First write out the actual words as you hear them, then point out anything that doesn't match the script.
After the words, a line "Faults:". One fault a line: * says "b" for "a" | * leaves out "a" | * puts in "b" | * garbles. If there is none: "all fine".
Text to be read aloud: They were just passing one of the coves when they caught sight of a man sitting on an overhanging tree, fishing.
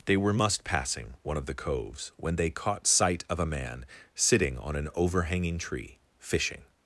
They were must passing one of the coves when they caught sight of a man sitting on an overhanging tree, fishing.
Faults:
* says "must" for "just"